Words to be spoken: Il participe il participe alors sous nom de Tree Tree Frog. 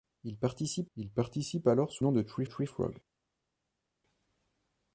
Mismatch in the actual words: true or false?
false